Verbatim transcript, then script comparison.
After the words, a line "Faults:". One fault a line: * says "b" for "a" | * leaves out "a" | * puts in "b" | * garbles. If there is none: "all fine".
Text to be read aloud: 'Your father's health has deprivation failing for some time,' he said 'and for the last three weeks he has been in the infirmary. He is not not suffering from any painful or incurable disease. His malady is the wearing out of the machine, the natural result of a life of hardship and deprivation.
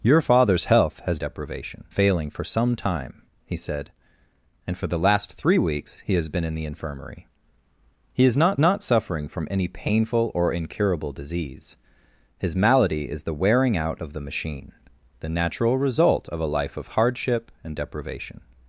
'Your father's health has deprivation failing for some time,' he said 'and for the last three weeks he has been in the infirmary. He is not not suffering from any painful or incurable disease. His malady is the wearing out of the machine, the natural result of a life of hardship and deprivation.
Faults:
all fine